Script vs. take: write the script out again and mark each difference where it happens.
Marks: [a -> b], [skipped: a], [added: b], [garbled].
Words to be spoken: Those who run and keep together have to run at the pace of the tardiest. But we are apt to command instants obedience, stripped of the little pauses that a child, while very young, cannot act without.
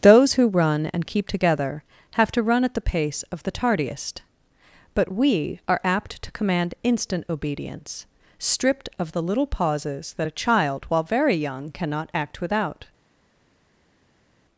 Those who run and keep together have to run at the pace of the tardiest. But we are apt to command [instants -> instant] obedience, stripped of the little pauses that a child, while very young, cannot act without.